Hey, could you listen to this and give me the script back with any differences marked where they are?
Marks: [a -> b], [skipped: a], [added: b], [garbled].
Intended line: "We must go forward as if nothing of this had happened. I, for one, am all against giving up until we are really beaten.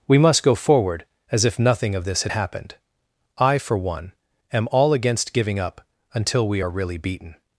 "We must go forward as if nothing of this had happened. I, for one, am all against giving up until we are really beaten.